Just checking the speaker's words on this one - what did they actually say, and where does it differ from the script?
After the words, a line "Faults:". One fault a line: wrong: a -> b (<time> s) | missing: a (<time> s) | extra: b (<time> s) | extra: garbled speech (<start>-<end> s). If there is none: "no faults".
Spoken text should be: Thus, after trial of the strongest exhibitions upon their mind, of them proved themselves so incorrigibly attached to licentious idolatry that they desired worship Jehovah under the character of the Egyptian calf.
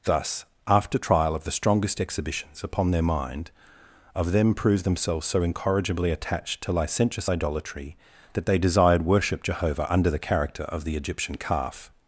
Thus, after trial of the strongest exhibitions upon their mind, of them proved themselves so incorrigibly attached to licentious idolatry that they desired worship Jehovah under the character of the Egyptian calf.
Faults:
no faults